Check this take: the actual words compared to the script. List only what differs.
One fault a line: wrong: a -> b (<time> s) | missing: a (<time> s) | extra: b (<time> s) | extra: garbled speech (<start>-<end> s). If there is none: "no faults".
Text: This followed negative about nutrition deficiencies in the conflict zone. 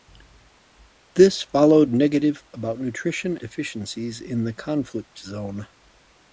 no faults